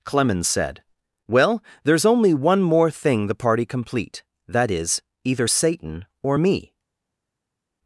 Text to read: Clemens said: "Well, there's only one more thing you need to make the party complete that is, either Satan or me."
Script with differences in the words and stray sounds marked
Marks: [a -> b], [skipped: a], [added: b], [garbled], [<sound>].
Clemens said: "Well, there's only one more thing [skipped: you need to make] the party complete that is, either Satan or me."